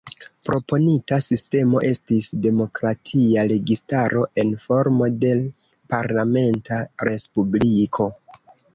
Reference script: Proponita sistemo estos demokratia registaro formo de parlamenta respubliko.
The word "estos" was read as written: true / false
false